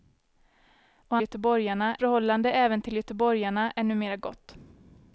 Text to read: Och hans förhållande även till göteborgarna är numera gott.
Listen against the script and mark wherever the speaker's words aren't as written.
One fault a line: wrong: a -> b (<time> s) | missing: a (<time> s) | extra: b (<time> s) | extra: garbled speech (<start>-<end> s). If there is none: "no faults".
wrong: hans -> göteborgarna (1.2 s)